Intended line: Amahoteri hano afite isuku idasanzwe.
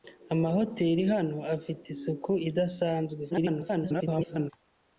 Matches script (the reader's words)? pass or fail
fail